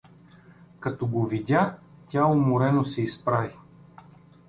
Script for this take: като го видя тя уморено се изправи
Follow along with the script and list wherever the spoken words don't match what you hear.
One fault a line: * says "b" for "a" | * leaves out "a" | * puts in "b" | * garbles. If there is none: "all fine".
all fine